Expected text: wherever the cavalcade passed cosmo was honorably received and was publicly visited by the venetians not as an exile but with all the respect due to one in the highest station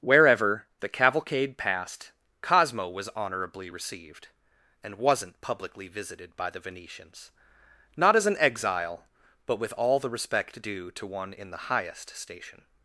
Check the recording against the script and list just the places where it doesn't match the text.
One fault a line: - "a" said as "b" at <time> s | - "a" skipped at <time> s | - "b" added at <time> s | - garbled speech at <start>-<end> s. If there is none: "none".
- "was" said as "wasn't" at 5.0 s